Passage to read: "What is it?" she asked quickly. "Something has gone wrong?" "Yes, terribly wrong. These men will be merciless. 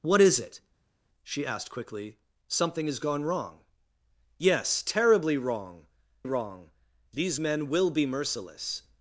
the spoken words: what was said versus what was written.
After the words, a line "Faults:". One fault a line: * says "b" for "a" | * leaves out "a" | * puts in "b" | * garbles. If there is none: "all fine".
"What is it?" she asked quickly. "Something has gone wrong?" "Yes, terribly wrong wrong. These men will be merciless.
Faults:
* puts in "wrong"